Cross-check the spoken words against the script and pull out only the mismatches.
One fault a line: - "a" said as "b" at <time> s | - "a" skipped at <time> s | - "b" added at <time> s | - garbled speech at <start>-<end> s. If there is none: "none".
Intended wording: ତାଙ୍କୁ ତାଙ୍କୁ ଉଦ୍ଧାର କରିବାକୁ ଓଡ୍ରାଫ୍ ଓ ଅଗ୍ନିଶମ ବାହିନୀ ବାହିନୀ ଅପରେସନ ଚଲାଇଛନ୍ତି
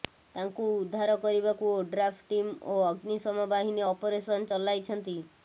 - "ତାଙ୍କୁ" skipped at 0.6 s
- "ଟିମ୍" added at 2.3 s
- "ବାହିନୀ" skipped at 3.9 s